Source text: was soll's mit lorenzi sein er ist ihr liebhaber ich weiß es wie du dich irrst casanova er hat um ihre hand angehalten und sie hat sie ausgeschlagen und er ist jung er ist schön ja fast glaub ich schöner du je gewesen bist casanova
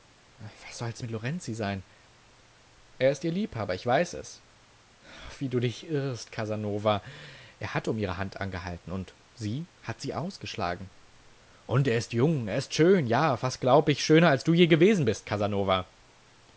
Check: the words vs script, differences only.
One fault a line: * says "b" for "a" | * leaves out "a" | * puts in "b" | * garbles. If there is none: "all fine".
* puts in "als"